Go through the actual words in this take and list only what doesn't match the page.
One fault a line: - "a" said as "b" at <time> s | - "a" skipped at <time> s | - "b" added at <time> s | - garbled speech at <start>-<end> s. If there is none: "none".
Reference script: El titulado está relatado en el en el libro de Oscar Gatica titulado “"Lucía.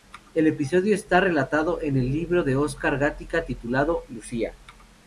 - "titulado" said as "episodio" at 0.5 s
- "en el" skipped at 2.1 s